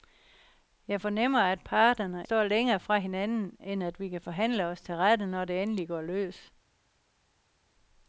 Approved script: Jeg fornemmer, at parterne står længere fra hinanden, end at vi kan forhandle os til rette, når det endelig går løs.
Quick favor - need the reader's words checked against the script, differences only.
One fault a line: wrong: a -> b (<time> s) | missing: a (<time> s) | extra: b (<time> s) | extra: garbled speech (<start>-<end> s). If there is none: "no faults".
no faults